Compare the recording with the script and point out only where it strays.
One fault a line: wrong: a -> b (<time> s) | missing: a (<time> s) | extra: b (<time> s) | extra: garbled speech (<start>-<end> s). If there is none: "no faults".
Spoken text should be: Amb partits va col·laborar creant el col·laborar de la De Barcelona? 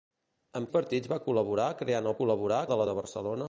no faults